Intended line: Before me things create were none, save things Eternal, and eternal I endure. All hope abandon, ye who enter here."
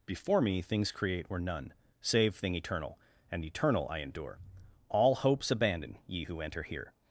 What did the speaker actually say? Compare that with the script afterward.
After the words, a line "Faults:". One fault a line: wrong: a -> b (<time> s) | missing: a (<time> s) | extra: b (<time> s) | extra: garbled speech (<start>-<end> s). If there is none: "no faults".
Before me things create were none, save thing Eternal, and eternal I endure. All hopes abandon, ye who enter here."
Faults:
wrong: things -> thing (2.4 s)
wrong: hope -> hopes (5.2 s)